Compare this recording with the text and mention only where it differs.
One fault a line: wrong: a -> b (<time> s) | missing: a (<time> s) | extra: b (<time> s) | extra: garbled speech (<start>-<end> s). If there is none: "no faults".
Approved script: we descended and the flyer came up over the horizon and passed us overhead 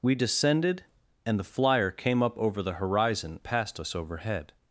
missing: and (3.4 s)